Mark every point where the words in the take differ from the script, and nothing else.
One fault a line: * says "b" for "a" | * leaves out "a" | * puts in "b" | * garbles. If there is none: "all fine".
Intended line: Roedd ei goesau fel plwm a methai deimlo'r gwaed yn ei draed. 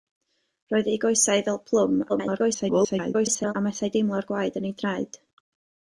* garbles